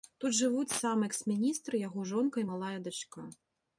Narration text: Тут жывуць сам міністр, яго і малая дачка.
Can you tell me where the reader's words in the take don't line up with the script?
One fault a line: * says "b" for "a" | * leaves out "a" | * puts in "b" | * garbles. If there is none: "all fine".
* puts in "экс"
* puts in "жонка"